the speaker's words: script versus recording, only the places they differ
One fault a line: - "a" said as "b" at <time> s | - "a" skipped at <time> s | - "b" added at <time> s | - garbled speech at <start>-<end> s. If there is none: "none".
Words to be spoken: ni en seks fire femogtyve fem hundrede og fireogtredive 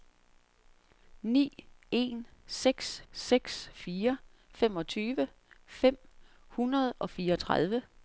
- "seks" added at 3.1 s